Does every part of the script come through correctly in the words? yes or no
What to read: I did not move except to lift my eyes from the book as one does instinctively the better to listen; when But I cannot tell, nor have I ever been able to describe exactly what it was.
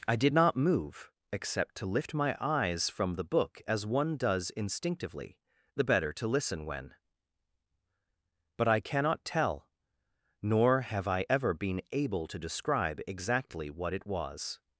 yes